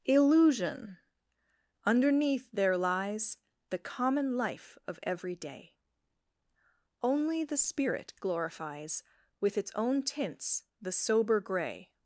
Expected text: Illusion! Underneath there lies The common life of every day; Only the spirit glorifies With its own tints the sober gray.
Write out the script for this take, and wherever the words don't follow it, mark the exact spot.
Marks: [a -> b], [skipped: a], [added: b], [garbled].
Illusion! Underneath there lies The common life of every day; Only the spirit glorifies With its own tints the sober gray.